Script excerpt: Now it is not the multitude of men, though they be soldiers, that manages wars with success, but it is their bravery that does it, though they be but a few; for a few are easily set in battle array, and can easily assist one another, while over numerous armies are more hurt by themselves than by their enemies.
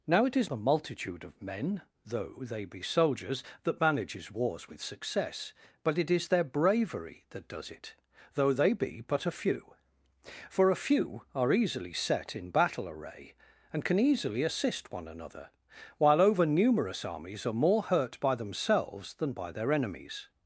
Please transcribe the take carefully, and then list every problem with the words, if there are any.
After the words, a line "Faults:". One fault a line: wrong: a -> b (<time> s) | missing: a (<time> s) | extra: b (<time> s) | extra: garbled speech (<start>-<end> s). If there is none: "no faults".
Now it is the multitude of men, though they be soldiers, that manages wars with success, but it is their bravery that does it, though they be but a few; for a few are easily set in battle array, and can easily assist one another, while over numerous armies are more hurt by themselves than by their enemies.
Faults:
missing: not (0.5 s)